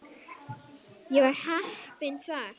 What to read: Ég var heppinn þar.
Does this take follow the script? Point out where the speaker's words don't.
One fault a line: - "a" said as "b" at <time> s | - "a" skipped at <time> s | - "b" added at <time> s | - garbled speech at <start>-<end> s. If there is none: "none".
none